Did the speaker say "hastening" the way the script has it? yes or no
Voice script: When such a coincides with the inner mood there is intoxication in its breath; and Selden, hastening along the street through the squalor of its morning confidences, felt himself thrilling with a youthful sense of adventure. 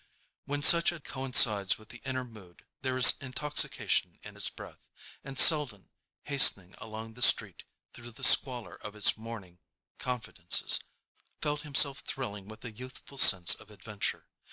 yes